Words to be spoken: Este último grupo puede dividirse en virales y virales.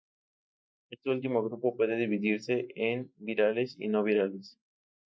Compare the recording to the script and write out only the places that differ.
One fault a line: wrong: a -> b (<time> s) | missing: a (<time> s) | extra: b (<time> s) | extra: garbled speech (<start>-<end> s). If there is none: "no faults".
extra: no (3.9 s)